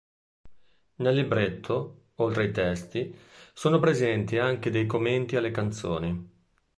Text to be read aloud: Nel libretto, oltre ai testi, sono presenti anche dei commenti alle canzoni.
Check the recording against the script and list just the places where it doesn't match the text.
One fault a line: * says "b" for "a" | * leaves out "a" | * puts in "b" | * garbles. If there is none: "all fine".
all fine